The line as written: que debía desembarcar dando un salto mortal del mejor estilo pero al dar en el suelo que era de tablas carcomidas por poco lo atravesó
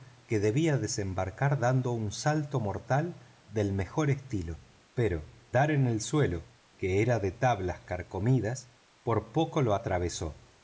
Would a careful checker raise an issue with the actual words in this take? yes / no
yes